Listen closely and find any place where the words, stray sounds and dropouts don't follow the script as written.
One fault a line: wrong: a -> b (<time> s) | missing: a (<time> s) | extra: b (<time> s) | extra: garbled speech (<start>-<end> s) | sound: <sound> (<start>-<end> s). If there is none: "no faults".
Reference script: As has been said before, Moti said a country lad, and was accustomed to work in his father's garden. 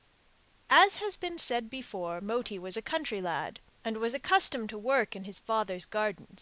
wrong: said -> was (2.6 s)